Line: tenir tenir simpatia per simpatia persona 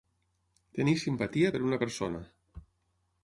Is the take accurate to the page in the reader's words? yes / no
no